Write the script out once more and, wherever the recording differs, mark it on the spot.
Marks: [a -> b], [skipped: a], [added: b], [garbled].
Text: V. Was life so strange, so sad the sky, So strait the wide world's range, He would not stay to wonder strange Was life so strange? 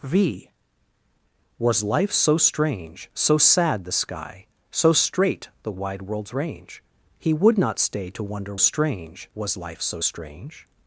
V. Was life so strange, so sad the sky, So strait the wide world's range, He would not stay to wonder strange Was life so strange?